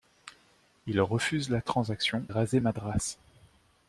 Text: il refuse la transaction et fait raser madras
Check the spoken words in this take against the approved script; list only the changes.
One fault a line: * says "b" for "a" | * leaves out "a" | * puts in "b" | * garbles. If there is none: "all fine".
* leaves out "et fait"